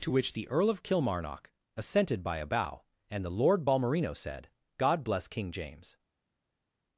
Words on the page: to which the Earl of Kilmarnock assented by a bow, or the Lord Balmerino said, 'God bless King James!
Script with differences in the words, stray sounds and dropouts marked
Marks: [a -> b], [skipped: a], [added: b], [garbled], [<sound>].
to which the Earl of Kilmarnock assented by a bow, [or -> and] the Lord Balmerino said, 'God bless King James!